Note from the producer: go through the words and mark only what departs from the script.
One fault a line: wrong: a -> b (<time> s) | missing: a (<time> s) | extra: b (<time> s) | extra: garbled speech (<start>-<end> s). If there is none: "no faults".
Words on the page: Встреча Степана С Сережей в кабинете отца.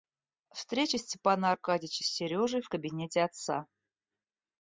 extra: Аркадьича (1.5 s)